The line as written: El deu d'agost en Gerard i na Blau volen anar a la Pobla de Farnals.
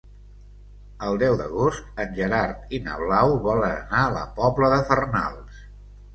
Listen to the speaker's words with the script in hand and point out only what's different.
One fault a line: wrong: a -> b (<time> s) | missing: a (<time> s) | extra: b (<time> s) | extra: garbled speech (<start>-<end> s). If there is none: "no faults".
no faults